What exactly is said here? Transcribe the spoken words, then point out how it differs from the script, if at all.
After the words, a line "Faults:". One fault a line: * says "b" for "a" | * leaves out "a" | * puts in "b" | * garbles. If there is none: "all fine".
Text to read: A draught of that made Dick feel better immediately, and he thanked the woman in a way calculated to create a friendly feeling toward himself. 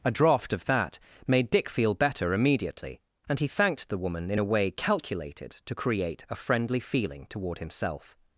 A draught of that made Dick feel better immediately, and he thanked the woman in a way calculated to create a friendly feeling toward himself.
Faults:
all fine